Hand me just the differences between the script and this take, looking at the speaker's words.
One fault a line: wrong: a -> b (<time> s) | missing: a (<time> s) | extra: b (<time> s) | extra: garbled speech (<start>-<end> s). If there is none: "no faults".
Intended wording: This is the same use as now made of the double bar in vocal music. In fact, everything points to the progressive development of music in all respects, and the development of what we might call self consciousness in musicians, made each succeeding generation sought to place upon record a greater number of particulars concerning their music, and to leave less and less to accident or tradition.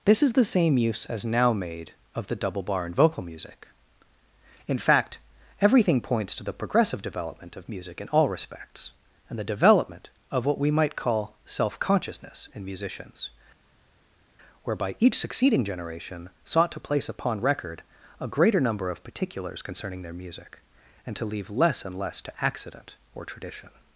wrong: made -> whereby (14.6 s)